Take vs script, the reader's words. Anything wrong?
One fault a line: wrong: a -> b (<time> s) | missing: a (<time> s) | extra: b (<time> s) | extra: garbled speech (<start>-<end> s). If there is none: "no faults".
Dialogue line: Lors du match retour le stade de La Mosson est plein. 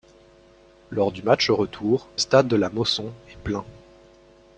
missing: le (2.1 s)